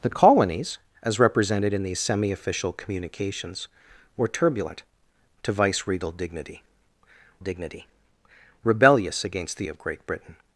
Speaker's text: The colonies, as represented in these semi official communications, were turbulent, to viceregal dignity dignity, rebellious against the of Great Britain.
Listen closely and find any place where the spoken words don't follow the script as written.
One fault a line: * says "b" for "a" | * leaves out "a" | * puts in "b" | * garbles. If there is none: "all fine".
all fine